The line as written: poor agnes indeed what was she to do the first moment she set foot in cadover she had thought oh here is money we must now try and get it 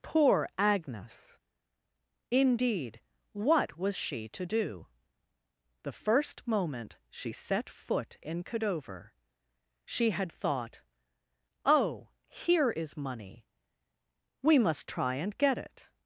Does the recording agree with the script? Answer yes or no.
no